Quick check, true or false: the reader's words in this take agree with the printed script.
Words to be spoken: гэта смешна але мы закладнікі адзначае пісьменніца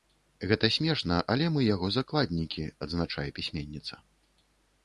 false